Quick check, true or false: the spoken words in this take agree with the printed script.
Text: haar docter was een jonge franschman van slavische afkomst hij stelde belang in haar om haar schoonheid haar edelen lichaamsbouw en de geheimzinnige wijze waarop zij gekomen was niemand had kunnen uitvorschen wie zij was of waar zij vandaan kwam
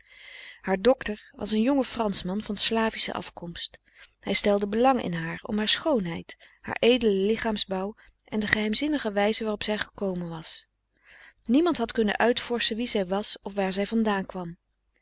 true